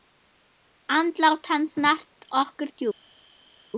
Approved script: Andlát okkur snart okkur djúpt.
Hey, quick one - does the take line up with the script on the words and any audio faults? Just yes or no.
no